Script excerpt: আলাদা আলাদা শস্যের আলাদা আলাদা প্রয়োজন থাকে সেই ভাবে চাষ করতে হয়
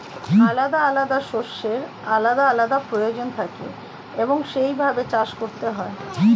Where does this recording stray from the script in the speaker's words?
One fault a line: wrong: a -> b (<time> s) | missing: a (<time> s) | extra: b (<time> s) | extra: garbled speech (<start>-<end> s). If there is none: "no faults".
extra: এবং (4.2 s)